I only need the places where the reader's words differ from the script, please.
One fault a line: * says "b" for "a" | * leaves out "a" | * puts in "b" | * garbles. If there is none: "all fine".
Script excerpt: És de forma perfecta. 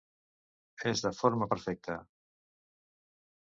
all fine